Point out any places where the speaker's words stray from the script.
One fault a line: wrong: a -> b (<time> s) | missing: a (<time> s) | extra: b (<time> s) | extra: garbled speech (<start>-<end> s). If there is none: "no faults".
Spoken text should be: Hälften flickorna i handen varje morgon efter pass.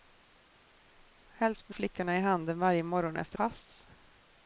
no faults